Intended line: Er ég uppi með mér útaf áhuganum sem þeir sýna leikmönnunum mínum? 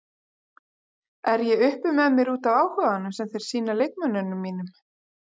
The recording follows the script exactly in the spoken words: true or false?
true